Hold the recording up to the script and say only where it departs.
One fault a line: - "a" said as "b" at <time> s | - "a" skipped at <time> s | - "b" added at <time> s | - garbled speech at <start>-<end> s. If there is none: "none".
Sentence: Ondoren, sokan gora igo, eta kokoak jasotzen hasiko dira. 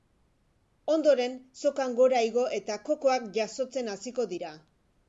none